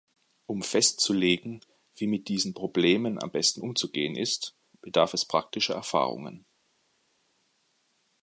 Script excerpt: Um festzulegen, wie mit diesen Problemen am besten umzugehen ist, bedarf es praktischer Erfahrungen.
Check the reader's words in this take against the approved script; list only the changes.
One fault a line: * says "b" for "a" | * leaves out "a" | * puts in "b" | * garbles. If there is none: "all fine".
all fine